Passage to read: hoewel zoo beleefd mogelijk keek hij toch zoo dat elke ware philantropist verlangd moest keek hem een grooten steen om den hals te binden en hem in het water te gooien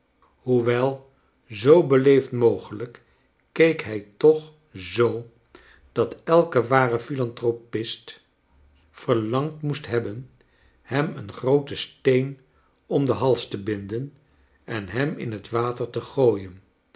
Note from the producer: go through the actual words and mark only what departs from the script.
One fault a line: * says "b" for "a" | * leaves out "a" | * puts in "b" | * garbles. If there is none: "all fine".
* says "hebben" for "keek"